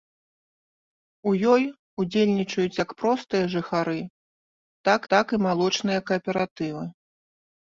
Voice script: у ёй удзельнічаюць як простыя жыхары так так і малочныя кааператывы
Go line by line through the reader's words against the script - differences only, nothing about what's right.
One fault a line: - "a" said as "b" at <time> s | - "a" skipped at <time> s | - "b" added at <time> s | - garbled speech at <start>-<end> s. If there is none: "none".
none